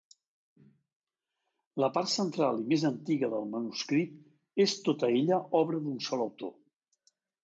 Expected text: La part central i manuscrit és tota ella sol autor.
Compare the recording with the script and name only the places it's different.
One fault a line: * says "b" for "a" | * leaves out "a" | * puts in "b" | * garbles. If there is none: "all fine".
* puts in "més antiga del"
* puts in "obra d'un"